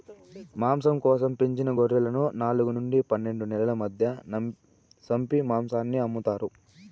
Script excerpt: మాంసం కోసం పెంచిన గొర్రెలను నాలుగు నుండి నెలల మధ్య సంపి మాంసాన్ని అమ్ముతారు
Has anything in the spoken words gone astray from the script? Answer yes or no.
yes